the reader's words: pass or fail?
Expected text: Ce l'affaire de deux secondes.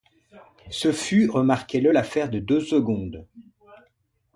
fail